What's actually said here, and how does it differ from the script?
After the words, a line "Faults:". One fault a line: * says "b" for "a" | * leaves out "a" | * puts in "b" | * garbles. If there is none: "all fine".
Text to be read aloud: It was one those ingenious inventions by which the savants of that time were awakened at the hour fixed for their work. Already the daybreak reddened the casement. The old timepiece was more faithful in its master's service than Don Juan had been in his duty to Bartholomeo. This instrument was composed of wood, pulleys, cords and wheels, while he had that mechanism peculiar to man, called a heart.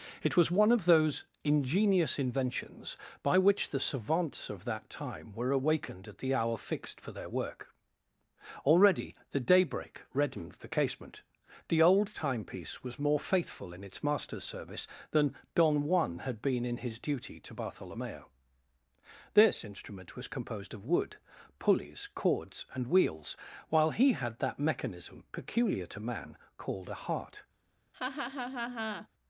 It was one of those ingenious inventions by which the savants of that time were awakened at the hour fixed for their work. Already the daybreak reddened the casement. The old timepiece was more faithful in its master's service than Don Juan had been in his duty to Bartholomeo. This instrument was composed of wood, pulleys, cords and wheels, while he had that mechanism peculiar to man, called a heart.
Faults:
* puts in "of"